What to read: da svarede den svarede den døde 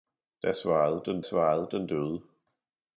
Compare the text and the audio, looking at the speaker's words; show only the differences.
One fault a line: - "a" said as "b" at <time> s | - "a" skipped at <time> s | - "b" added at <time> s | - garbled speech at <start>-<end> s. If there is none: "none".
none